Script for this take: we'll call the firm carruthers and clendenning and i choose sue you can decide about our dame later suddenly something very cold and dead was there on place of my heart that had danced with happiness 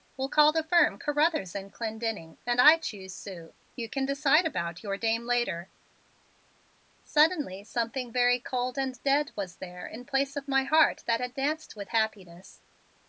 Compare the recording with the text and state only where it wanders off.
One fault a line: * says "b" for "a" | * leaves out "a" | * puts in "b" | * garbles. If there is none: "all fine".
* says "your" for "our"
* says "in" for "on"